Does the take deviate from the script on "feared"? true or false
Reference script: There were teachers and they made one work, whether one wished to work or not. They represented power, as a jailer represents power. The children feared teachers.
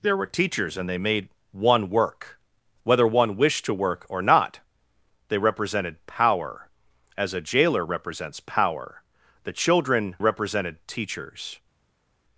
true